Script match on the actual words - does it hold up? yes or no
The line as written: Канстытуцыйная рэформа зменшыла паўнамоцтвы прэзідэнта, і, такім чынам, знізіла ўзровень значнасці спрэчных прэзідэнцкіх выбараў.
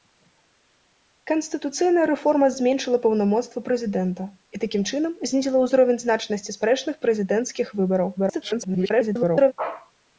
no